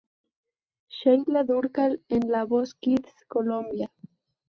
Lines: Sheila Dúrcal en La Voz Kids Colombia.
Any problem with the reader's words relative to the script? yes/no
no